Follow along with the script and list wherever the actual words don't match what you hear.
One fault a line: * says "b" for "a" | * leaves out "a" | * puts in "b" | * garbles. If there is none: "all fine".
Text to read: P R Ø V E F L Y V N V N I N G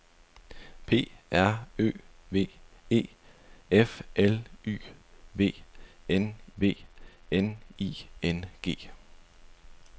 all fine